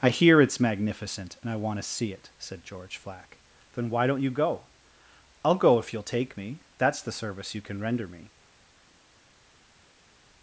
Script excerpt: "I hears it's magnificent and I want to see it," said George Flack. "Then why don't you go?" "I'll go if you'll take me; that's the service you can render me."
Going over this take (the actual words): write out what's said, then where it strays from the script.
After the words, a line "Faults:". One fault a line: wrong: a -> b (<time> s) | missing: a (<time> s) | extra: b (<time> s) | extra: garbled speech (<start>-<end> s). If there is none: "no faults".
"I hear it's magnificent and I want to see it," said George Flack. "Then why don't you go?" "I'll go if you'll take me; that's the service you can render me."
Faults:
wrong: hears -> hear (0.1 s)